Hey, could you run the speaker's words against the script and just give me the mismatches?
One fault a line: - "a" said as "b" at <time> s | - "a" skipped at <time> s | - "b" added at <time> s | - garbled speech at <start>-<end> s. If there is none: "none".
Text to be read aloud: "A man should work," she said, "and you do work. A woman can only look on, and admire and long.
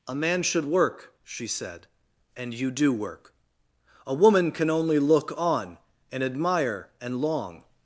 none